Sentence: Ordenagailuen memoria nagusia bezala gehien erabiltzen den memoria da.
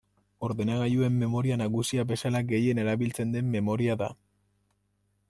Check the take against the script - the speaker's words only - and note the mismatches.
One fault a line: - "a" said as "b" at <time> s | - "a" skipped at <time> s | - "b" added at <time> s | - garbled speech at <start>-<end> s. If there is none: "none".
none